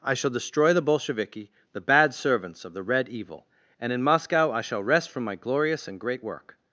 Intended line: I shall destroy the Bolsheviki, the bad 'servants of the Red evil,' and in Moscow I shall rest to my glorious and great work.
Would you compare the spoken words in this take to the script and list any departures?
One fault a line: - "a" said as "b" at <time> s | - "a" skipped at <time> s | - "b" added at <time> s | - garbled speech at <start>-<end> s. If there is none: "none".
- "to" said as "from" at 5.1 s